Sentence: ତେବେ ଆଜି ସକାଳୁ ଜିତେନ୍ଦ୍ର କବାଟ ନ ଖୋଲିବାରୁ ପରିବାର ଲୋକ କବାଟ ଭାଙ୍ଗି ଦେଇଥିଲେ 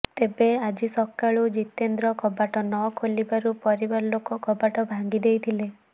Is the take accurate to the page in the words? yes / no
yes